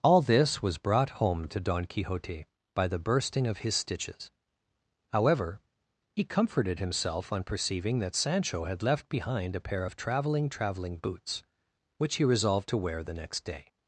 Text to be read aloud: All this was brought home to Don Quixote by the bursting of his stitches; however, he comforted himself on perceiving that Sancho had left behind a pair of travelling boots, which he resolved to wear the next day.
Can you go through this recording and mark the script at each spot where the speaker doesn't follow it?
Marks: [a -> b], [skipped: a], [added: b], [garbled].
All this was brought home to Don Quixote by the bursting of his stitches; however, he comforted himself on perceiving that Sancho had left behind a pair of travelling [added: travelling] boots, which he resolved to wear the next day.